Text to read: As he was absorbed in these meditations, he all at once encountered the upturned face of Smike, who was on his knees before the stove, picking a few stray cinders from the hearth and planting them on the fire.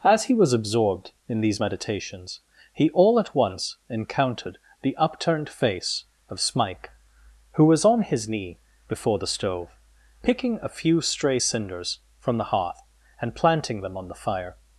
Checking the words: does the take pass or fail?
fail